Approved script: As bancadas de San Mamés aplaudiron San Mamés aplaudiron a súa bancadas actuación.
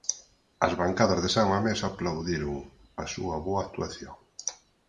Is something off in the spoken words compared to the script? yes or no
yes